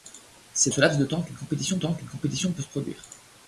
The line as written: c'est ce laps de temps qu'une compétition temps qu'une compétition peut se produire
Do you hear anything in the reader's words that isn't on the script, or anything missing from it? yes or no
no